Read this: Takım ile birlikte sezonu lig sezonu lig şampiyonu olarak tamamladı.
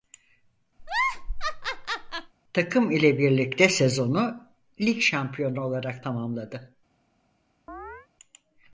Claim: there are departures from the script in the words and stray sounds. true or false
true